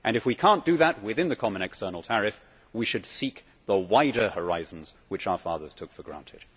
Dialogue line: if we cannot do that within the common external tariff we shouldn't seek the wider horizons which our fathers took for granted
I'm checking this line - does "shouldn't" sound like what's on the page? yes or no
no